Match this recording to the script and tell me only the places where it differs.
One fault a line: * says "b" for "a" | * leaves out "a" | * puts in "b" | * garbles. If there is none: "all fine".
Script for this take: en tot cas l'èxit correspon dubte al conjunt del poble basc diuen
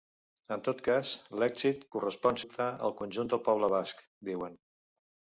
all fine